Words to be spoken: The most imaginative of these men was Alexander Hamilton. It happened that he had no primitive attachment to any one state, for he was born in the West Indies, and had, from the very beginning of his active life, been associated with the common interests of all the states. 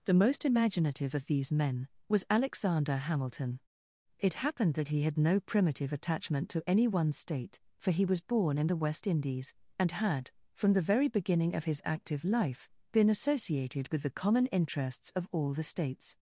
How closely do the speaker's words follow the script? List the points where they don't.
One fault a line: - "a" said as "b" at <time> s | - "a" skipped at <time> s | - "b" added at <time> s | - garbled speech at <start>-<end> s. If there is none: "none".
none